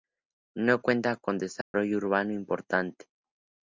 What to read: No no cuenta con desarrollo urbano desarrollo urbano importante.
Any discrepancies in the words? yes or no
yes